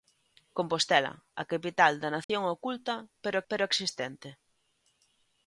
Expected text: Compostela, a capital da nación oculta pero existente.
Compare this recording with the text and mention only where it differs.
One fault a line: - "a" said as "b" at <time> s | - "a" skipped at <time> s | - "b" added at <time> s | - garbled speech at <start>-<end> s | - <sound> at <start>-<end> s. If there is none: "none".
- dropout at 2.2-2.3 s
- "pero" added at 3.5 s